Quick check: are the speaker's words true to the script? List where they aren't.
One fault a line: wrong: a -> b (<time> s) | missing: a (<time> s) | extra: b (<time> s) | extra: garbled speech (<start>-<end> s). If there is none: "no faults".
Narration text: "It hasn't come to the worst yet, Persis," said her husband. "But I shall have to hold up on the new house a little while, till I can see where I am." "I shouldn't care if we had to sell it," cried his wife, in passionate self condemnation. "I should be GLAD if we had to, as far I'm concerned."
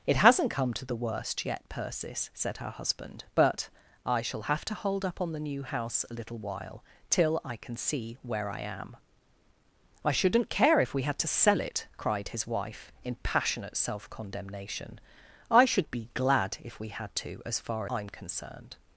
no faults